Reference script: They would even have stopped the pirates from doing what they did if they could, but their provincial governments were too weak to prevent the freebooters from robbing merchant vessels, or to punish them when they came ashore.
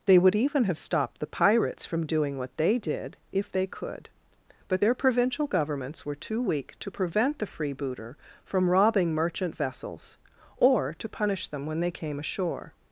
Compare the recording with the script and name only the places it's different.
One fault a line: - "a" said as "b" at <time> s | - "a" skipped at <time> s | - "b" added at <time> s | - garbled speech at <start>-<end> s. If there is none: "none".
- "freebooters" said as "freebooter" at 7.5 s